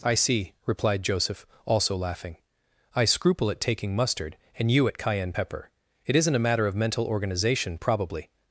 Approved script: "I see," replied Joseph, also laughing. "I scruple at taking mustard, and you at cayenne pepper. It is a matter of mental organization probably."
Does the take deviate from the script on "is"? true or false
true